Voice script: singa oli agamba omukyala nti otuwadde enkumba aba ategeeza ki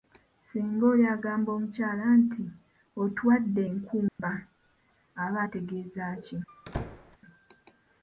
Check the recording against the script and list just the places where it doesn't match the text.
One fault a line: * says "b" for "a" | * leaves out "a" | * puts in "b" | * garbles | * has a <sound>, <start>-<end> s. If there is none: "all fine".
* has a dropout, 4.1-4.2 s
* has a squeak, 6.5-7.2 s